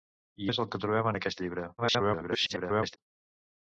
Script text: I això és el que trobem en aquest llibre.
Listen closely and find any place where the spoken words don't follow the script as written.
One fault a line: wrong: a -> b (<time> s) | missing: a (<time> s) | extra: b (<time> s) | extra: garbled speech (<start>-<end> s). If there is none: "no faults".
missing: això (0.5 s)
extra: garbled speech (1.8-3.0 s)